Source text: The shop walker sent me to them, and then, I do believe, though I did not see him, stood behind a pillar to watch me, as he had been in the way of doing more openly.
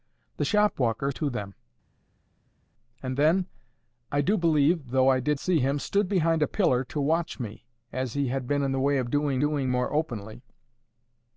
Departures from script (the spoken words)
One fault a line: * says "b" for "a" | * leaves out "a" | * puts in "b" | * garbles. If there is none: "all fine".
* leaves out "sent me"
* leaves out "not"
* puts in "doing"